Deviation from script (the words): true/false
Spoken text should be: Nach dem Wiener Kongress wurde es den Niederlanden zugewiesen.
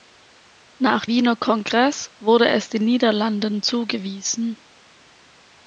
true